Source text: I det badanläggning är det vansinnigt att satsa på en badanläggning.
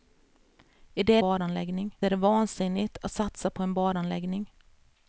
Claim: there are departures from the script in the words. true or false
false